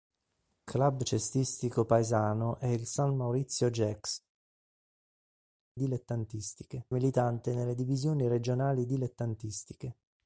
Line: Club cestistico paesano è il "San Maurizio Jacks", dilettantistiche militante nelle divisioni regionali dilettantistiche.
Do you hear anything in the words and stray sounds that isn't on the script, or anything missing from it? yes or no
no